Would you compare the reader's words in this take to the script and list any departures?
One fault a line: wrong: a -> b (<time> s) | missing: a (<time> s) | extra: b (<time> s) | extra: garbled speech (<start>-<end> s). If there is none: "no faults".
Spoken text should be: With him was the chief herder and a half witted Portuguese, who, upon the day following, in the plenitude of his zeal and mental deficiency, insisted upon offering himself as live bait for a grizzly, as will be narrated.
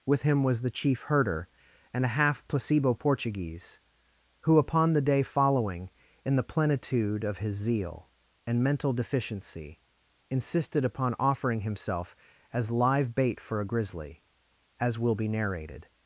wrong: witted -> placebo (2.5 s)